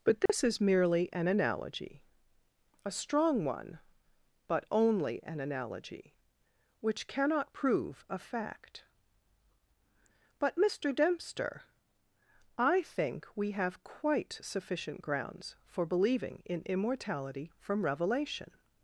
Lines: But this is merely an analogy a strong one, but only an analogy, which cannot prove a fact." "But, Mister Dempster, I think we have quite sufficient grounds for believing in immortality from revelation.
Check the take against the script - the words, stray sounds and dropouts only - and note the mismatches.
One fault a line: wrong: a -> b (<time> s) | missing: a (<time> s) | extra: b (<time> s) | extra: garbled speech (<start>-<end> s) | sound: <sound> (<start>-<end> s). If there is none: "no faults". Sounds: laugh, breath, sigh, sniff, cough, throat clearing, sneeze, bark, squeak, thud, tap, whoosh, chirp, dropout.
sound: dropout (0.3-0.3 s)